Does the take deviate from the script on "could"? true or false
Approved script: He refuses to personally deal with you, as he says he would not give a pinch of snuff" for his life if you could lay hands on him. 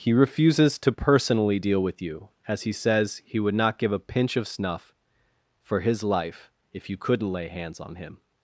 true